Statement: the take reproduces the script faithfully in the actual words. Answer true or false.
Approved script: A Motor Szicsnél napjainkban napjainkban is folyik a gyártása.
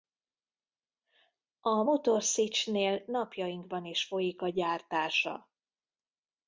false